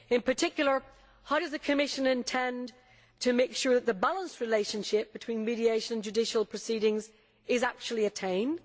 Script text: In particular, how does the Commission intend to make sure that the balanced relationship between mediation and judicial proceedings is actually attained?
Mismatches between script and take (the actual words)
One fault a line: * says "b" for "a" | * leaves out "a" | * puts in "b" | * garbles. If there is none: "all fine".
all fine